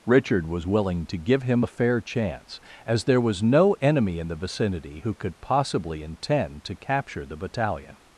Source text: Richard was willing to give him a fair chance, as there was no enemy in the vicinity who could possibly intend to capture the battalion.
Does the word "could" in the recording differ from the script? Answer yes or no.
no